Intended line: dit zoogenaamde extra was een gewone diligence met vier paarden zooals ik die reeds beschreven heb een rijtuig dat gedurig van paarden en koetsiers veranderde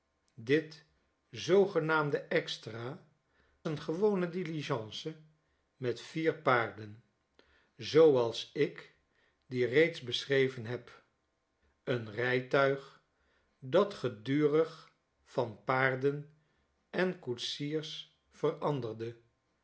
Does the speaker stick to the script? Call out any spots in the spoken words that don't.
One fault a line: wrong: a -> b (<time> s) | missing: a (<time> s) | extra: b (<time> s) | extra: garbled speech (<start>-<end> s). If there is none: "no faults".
missing: was (3.1 s)